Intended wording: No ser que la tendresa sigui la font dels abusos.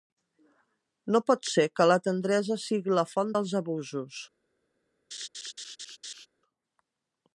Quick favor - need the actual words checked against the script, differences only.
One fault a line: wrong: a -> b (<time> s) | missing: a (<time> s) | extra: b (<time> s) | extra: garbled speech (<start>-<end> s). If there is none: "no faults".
extra: pot (1.3 s)